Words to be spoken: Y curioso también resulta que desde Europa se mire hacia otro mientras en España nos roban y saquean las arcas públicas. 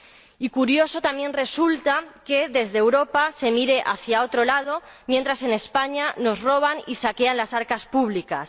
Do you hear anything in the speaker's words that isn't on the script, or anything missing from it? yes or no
yes